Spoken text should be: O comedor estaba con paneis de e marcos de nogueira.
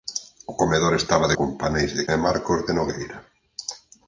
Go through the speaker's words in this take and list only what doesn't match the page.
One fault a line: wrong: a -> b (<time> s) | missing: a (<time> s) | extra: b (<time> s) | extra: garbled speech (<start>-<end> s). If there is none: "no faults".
no faults